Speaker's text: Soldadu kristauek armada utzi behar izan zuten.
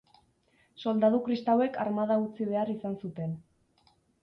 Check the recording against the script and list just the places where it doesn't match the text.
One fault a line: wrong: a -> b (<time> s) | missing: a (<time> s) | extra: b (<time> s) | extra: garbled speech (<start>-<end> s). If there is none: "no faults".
no faults